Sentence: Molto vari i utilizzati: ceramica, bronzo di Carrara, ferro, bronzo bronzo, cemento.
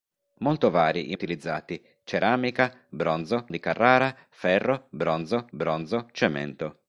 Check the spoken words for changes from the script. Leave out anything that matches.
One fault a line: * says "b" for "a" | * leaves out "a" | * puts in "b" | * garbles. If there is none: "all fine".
all fine